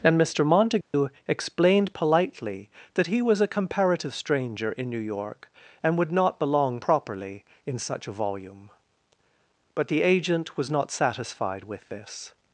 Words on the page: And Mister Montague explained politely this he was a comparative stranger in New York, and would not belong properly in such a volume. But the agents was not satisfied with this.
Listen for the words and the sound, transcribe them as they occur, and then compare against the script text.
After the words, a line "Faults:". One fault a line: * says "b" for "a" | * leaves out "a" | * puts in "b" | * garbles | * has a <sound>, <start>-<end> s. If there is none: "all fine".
And Mister Montague explained politely that he was a comparative stranger in New York, and would not belong properly in such a volume. But the agent was not satisfied with this.
Faults:
* has a dropout, 0.8-0.9 s
* says "that" for "this"
* says "agent" for "agents"